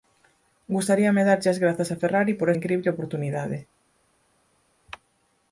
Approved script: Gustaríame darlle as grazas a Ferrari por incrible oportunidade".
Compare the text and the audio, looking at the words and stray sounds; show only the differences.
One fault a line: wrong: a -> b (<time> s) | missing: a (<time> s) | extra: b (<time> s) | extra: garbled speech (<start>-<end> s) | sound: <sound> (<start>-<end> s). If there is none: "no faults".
no faults